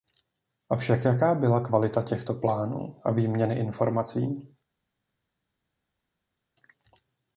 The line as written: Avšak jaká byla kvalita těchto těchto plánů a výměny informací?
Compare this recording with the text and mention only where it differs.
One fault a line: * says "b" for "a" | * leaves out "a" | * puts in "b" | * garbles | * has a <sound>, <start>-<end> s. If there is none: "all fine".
* leaves out "těchto"